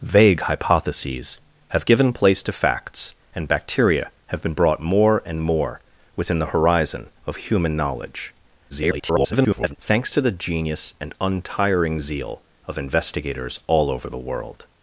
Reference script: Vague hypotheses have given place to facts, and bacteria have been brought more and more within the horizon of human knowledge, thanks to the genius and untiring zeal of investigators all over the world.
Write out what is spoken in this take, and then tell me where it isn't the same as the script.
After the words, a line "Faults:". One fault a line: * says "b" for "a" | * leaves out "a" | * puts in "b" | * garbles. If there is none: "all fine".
Vague hypotheses have given place to facts, and bacteria have been brought more and more within the horizon of human knowledge, [garbled] thanks to the genius and untiring zeal of investigators all over the world.
Faults:
* garbles